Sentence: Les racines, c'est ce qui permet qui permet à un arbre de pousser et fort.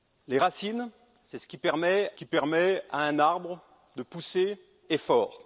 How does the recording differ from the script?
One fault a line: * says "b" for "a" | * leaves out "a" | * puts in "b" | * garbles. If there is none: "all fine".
all fine